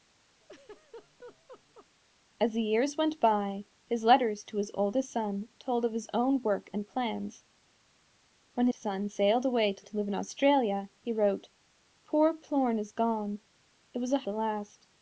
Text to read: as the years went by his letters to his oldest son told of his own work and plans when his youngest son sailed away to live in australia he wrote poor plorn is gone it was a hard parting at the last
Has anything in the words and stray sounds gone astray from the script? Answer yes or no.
yes